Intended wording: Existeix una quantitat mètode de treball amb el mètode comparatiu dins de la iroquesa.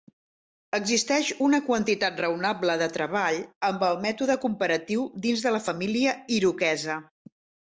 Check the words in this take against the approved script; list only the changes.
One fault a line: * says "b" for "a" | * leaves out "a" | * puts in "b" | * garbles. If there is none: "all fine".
* says "raonable" for "mètode"
* puts in "família"